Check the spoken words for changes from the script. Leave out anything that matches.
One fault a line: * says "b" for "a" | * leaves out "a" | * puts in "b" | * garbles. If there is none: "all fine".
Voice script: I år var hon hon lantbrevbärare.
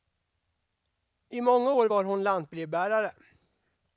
* puts in "många"
* leaves out "hon"